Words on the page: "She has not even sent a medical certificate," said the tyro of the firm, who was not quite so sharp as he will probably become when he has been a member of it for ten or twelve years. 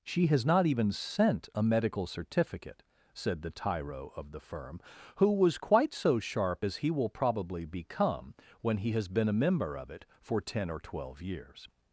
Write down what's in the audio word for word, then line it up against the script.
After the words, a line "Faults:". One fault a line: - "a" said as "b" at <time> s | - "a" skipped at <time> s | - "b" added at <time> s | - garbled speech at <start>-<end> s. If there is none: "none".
"She has not even sent a medical certificate," said the tyro of the firm, who was quite so sharp as he will probably become when he has been a member of it for ten or twelve years.
Faults:
- "not" skipped at 5.6 s